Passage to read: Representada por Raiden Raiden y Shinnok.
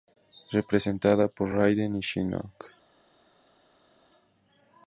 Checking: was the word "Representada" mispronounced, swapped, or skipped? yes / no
no